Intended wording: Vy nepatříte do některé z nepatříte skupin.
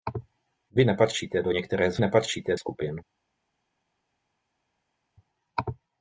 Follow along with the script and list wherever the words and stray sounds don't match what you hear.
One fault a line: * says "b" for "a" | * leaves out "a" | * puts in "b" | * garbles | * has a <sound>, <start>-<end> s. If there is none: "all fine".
all fine